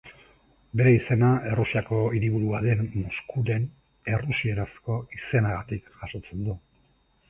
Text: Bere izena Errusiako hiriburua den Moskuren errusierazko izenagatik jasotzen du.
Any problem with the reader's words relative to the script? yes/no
no